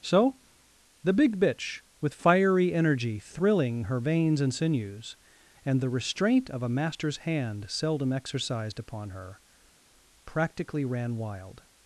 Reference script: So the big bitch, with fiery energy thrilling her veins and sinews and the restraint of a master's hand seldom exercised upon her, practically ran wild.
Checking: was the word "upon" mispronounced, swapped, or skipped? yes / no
no